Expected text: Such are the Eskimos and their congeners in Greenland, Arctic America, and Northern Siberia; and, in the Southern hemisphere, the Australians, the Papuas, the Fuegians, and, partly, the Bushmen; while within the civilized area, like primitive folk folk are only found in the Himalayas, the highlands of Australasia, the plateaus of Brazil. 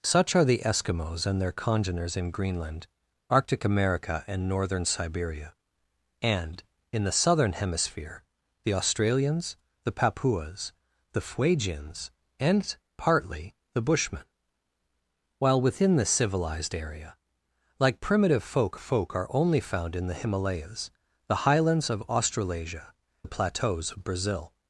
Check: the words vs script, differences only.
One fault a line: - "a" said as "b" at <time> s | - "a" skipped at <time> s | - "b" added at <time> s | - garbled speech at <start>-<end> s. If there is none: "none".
none